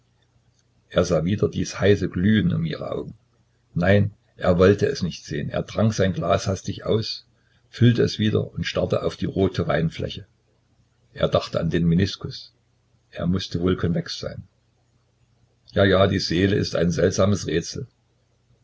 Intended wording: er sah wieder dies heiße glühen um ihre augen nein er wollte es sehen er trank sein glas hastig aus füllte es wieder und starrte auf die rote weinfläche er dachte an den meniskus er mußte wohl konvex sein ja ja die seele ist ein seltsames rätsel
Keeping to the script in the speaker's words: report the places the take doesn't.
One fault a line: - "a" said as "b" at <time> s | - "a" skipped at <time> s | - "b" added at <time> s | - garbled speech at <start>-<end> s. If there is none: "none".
- "nicht" added at 5.0 s